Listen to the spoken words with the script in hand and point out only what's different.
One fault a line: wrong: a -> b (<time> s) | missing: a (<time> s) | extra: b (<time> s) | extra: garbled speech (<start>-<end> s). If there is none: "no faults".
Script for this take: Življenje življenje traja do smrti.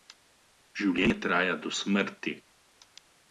missing: življenje (1.2 s)